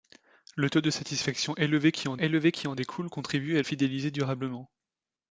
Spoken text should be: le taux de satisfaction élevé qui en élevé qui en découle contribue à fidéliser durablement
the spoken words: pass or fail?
pass